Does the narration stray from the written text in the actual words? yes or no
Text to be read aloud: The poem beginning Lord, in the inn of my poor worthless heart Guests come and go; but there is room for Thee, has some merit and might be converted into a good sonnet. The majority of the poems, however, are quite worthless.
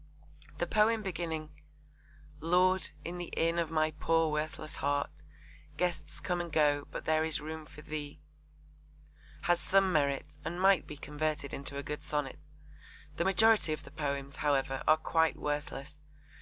no